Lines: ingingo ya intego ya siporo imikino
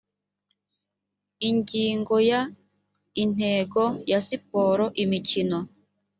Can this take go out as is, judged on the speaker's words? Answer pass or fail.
pass